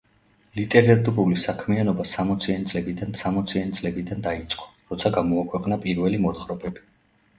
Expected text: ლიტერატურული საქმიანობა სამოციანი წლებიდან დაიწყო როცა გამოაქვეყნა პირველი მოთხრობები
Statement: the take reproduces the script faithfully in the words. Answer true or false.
false